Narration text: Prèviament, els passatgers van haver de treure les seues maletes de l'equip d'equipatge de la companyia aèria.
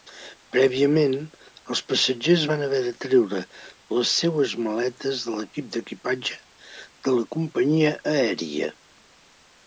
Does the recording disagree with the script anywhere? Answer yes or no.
no